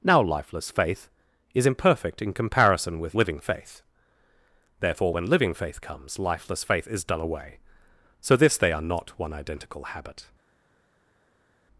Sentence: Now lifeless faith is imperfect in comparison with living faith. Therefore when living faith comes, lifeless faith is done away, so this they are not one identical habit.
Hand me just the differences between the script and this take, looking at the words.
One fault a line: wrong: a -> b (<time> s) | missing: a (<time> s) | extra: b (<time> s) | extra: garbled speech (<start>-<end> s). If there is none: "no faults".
no faults